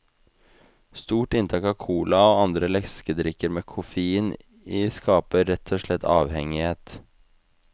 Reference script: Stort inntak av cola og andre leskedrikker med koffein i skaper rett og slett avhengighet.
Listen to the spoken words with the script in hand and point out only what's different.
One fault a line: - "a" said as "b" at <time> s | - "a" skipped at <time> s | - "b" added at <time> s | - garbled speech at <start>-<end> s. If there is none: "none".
none